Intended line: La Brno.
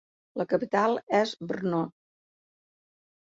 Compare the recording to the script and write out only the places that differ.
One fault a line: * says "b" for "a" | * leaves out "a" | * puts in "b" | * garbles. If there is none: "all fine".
* puts in "capital és"